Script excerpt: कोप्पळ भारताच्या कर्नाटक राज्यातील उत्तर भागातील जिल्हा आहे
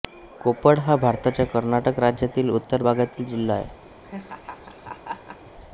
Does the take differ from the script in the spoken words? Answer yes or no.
yes